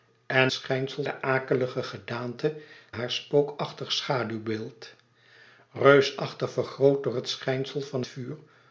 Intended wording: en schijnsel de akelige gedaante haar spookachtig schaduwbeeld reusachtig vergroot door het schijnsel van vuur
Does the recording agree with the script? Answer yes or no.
yes